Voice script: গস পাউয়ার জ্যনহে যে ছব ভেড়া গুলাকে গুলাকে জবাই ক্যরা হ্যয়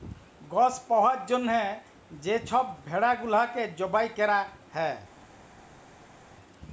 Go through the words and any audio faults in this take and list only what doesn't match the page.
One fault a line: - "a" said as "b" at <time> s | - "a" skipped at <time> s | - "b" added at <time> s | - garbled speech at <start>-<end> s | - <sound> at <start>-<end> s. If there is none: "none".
- "গুলাকে" skipped at 3.6 s